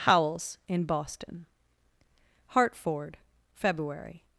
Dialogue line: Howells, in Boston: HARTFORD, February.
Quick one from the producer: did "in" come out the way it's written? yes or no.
yes